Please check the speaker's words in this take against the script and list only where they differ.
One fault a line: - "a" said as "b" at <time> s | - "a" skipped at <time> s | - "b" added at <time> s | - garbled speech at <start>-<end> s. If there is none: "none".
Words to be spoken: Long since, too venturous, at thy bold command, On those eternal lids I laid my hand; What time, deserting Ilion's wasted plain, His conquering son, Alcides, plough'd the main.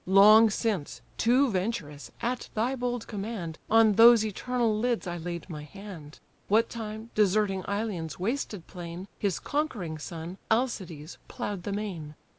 none